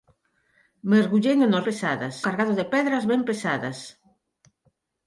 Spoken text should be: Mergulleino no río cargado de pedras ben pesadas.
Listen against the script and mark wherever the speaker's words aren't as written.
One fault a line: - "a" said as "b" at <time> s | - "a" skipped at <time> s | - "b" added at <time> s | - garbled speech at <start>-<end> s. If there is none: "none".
- "río" said as "pesadas" at 1.7 s